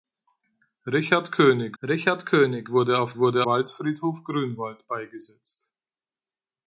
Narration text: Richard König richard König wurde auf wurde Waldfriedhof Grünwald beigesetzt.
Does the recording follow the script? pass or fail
pass